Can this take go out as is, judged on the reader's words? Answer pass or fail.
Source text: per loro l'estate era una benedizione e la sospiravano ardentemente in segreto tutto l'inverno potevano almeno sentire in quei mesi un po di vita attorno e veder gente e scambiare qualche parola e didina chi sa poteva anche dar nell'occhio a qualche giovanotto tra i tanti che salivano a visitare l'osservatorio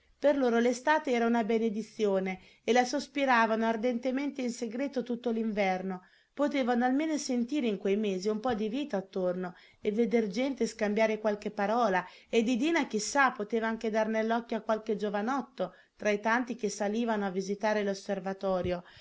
pass